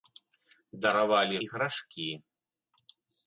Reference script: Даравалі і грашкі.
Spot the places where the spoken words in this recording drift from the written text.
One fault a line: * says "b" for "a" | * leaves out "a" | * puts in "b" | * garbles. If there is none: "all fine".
all fine